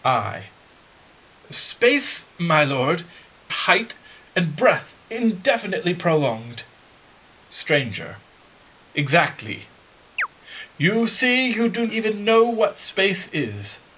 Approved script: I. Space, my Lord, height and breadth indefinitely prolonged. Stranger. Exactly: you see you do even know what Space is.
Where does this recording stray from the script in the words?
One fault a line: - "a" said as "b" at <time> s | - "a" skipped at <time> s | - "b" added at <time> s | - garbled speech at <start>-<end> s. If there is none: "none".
none